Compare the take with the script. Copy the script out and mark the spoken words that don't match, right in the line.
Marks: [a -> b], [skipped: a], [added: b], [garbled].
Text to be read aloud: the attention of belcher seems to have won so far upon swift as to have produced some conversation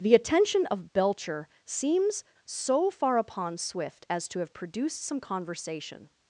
the attention of belcher seems [skipped: to have won] so far upon swift as to have produced some conversation